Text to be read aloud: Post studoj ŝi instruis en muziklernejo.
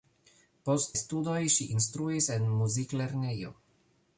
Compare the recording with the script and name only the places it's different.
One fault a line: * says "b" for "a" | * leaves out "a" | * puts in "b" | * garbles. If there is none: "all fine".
all fine